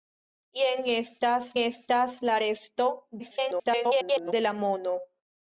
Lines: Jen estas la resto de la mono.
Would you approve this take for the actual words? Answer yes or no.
no